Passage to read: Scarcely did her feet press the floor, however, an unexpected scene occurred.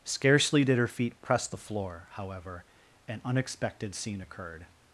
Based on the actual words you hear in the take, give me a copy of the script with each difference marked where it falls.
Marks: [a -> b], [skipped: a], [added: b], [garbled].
Scarcely did her feet press the floor, however, an unexpected scene occurred.